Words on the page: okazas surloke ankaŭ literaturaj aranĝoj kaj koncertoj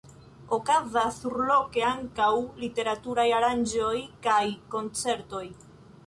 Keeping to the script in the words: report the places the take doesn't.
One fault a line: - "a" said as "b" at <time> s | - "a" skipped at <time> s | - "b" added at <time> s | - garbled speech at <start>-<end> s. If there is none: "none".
none